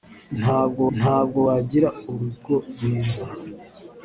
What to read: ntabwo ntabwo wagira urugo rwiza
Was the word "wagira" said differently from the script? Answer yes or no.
no